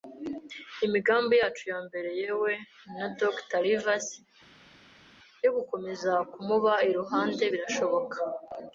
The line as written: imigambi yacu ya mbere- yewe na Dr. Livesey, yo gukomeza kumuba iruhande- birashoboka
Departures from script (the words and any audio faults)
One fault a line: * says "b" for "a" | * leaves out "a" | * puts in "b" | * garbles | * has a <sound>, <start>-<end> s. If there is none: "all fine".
all fine